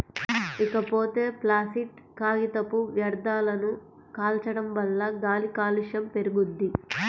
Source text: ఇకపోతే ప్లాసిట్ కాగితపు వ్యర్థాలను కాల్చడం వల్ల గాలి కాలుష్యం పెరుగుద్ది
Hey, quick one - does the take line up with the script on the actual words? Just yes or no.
yes